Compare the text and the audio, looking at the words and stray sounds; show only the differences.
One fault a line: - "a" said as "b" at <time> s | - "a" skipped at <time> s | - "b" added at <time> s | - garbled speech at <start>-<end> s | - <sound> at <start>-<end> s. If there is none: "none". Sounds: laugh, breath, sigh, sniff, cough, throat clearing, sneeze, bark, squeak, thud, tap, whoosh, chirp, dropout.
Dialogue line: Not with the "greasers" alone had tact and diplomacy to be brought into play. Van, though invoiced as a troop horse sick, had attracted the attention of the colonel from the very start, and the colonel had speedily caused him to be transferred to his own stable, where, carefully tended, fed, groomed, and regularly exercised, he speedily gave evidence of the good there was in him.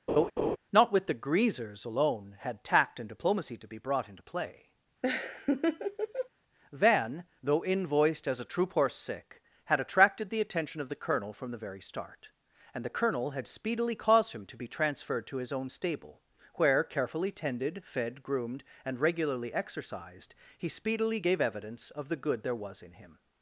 - laugh at 0.1-0.6 s
- laugh at 5.0-6.3 s